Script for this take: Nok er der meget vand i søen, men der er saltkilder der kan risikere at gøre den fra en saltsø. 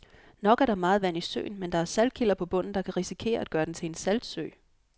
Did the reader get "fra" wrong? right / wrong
wrong